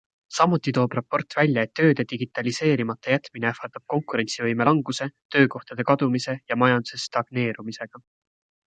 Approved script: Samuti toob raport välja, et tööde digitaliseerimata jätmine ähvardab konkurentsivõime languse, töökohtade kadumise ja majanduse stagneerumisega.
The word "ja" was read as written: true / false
true